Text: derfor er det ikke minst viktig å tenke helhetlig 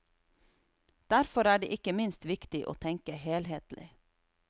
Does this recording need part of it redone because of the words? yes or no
no